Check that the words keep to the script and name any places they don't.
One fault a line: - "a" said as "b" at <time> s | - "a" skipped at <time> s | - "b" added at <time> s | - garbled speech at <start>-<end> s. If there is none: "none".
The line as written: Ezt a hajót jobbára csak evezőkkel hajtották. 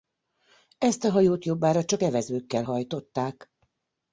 none